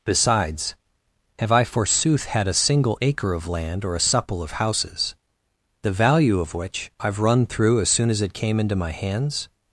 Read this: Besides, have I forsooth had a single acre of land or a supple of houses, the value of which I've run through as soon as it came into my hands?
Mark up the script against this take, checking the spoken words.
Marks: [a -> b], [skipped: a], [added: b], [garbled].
Besides, have I forsooth had a single acre of land or a supple of houses, the value of which I've run through as soon as it came into my hands?